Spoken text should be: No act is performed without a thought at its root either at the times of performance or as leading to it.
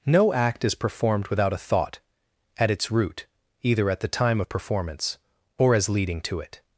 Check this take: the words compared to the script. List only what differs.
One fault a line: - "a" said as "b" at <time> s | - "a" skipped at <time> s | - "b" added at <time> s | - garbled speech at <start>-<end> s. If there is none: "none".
- "times" said as "time" at 4.1 s